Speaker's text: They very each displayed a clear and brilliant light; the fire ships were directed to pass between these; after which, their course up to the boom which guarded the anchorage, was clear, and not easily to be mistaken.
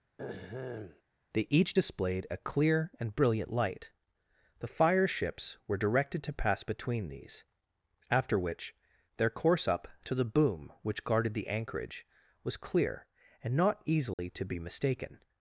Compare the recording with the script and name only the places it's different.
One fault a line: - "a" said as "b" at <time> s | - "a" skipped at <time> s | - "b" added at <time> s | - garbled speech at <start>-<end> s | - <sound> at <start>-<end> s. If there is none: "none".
- throat clearing at 0.2-1.0 s
- "very" skipped at 1.5 s
- dropout at 14.1-14.2 s